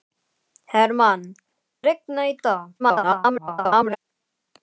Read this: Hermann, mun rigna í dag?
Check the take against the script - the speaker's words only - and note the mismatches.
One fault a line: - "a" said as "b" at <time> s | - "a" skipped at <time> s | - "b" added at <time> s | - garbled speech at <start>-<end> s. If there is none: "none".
- "mun" skipped at 1.2 s
- garbled speech at 2.8-4.0 s